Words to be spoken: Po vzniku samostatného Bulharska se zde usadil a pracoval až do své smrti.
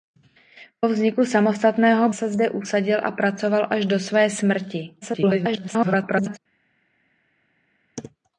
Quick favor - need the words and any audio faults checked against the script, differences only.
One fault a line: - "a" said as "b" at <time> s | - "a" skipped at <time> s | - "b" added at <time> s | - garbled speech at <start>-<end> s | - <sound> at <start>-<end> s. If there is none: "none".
- "Bulharska" skipped at 2.1 s
- garbled speech at 5.0-6.4 s